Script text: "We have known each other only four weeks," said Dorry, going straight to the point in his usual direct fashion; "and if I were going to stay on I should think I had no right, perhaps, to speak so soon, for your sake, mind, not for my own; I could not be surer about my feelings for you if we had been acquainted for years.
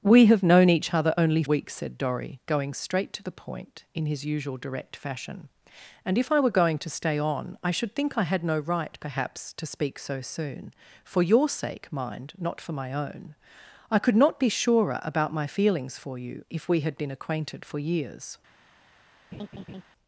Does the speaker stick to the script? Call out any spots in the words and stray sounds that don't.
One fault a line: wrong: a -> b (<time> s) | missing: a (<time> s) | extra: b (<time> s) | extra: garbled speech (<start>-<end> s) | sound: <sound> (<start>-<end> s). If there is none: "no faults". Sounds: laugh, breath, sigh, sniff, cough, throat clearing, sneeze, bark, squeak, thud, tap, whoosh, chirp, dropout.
missing: four (1.4 s)
sound: laugh (19.3-19.8 s)